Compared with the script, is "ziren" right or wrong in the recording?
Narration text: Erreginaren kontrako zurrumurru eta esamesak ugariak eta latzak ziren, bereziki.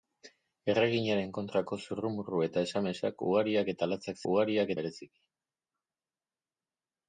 wrong